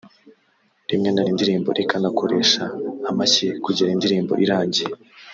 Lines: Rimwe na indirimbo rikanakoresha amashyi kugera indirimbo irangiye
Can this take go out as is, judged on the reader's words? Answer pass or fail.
pass